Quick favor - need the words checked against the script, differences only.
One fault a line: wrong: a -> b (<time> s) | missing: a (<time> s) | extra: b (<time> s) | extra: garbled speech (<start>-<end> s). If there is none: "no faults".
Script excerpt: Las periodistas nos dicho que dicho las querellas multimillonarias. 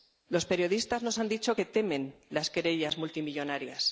wrong: Las -> Los (0.3 s)
extra: han (1.2 s)
wrong: dicho -> temen (1.7 s)